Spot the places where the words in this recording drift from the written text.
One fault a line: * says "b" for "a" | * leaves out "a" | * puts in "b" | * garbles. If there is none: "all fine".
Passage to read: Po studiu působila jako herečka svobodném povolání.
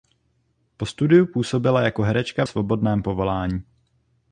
all fine